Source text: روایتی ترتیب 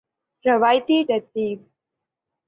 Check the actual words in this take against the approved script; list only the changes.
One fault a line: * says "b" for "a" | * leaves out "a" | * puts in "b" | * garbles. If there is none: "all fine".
all fine